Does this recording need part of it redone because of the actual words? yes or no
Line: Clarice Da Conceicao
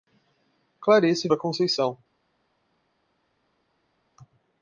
no